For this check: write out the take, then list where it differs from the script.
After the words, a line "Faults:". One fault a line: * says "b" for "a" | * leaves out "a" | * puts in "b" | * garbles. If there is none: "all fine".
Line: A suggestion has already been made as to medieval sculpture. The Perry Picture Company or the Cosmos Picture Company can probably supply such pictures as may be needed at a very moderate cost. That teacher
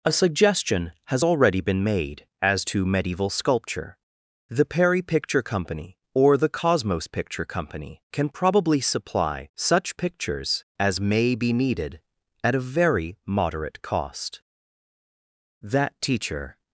A suggestion has already been made as to medieval sculpture. The Perry Picture Company or the Cosmos Picture Company can probably supply such pictures as may be needed at a very moderate cost. That teacher
Faults:
all fine